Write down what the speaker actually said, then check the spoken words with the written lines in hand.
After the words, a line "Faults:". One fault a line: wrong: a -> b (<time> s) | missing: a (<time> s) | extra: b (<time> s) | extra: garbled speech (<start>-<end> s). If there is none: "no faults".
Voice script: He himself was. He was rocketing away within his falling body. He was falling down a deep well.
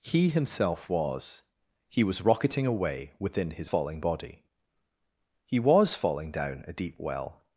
He himself was. He was rocketing away within his falling body. He was falling down a deep well.
Faults:
no faults